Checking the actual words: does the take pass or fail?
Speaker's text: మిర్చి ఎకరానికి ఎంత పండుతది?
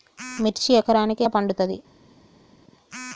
fail